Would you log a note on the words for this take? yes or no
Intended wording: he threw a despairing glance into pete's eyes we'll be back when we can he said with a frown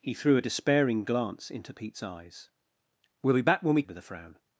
yes